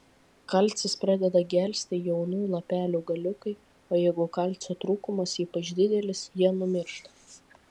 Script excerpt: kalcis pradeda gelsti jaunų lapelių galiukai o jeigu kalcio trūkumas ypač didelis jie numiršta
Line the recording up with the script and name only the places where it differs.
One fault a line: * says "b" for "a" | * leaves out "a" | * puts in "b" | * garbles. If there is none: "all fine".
all fine